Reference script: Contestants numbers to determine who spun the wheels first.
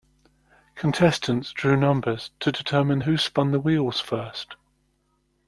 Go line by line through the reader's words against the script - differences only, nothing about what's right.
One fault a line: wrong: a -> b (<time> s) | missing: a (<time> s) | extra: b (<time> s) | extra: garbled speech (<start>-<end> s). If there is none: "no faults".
extra: drew (1.5 s)